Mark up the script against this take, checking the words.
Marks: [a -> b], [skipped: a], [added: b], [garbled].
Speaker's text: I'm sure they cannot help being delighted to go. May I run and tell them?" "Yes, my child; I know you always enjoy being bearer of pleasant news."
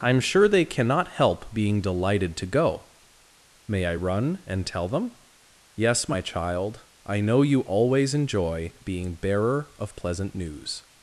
I'm sure they cannot help being delighted to go. May I run and tell them?" "Yes, my child; I know you always enjoy being bearer of pleasant news."